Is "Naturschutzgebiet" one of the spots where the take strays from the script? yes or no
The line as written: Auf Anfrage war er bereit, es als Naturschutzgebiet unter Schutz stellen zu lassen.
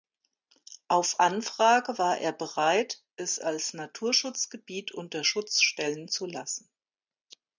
no